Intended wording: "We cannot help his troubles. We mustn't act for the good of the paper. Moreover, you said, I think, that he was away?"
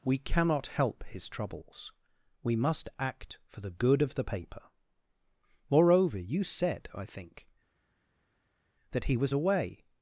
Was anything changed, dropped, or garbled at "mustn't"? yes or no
yes